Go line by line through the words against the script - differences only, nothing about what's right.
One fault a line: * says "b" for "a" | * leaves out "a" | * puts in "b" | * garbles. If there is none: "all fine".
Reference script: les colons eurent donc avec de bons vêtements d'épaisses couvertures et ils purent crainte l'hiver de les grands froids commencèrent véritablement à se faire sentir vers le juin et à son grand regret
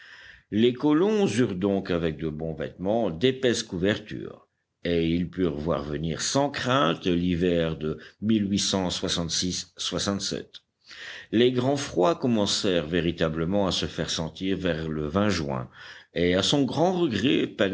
* puts in "voir venir sans"